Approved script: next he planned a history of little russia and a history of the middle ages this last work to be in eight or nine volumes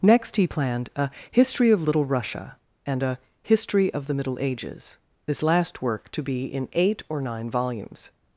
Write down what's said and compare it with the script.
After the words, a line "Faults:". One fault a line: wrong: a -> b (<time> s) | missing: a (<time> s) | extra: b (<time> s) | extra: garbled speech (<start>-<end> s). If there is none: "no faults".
next he planned a history of little russia and a history of the middle ages this last work to be in eight or nine volumes
Faults:
no faults